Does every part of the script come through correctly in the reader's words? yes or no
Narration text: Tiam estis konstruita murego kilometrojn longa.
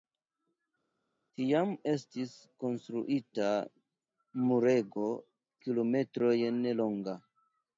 yes